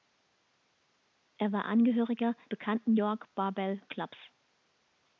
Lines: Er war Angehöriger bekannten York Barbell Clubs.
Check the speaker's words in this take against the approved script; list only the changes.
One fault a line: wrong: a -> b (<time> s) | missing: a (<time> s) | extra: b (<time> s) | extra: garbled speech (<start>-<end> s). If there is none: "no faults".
no faults